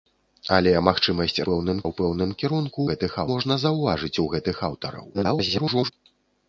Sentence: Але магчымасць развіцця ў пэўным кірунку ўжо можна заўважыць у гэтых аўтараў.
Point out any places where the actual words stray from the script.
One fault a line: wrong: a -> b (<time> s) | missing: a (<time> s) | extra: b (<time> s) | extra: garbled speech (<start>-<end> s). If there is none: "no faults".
wrong: развіцця -> пэўным (1.5 s)
wrong: ўжо -> гэтых (2.9 s)
extra: garbled speech (5.1-5.9 s)